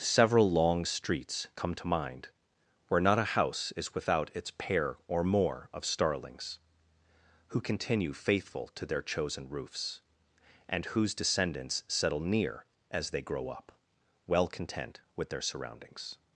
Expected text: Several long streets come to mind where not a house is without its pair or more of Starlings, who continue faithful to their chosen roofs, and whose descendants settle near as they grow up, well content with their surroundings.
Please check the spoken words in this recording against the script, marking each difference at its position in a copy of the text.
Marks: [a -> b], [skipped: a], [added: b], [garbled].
Several long streets come to mind where not a house is without its pair or more of Starlings, who continue faithful to their chosen roofs, and whose descendants settle near as they grow up, well content with their surroundings.